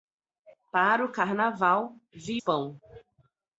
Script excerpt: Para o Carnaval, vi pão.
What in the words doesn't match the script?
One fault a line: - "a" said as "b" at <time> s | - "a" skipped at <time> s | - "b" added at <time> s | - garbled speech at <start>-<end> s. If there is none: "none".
none